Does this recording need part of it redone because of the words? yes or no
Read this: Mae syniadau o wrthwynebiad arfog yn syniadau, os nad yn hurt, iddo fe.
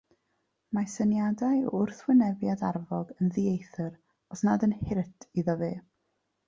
yes